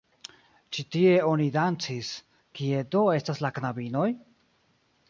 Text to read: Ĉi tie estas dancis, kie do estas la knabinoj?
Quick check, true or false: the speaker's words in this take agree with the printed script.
false